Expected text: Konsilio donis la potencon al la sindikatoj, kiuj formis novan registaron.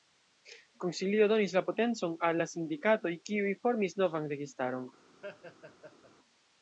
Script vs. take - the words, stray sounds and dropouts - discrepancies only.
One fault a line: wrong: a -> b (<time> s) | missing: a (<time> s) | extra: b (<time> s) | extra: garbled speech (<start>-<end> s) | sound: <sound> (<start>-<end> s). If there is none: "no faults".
sound: laugh (5.2-6.1 s)